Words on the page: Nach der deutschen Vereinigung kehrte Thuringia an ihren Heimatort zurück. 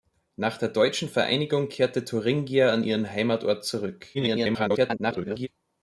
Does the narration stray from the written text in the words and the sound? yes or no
yes